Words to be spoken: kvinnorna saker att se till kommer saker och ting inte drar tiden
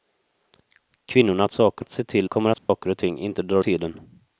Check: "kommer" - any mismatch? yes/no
no